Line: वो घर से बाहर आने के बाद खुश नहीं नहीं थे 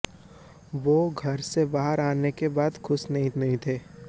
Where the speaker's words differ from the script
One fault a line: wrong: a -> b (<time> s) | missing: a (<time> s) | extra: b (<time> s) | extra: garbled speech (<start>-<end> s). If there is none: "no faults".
no faults